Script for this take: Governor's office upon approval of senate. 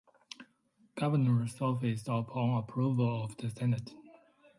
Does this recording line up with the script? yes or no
no